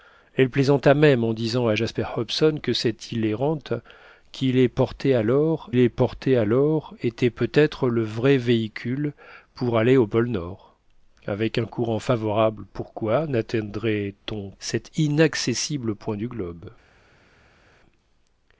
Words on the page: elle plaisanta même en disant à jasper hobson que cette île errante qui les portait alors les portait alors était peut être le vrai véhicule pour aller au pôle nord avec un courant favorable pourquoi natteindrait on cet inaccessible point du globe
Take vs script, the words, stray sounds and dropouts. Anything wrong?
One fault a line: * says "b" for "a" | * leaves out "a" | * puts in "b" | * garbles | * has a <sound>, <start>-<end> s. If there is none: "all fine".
all fine